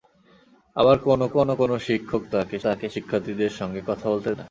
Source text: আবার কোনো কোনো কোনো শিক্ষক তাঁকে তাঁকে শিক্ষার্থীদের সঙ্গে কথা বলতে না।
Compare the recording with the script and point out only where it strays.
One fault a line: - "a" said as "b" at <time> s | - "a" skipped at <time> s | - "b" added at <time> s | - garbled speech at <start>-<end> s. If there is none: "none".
none